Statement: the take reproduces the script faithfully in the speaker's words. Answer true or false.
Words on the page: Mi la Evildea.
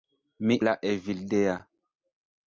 true